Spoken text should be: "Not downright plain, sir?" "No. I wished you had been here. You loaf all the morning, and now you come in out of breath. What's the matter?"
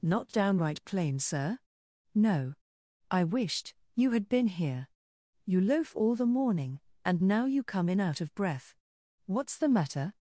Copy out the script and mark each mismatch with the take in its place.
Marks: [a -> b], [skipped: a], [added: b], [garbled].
"Not downright plain, sir?" "No. I wished you had been here. You loaf all the morning, and now you come in out of breath. What's the matter?"